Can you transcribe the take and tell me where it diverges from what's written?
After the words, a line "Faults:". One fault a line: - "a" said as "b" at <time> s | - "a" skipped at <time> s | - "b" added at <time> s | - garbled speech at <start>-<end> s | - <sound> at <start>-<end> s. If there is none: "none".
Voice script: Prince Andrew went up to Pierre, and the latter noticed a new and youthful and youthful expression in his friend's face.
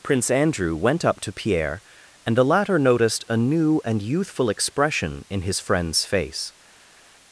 Prince Andrew went up to Pierre, and the latter noticed a new and youthful expression in his friend's face.
Faults:
- "and youthful" skipped at 4.5 s